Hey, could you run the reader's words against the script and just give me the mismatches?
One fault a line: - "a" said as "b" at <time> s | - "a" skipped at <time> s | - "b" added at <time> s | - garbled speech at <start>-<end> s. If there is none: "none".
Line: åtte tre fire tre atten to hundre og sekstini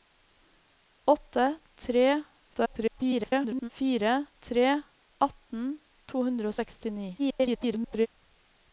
- garbled speech at 2.5-3.7 s
- garbled speech at 7.2-8.1 s